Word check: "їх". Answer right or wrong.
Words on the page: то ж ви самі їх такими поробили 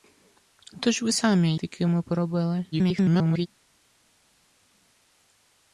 wrong